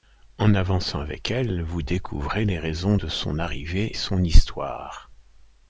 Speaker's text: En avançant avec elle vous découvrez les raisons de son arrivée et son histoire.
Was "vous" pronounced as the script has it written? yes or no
yes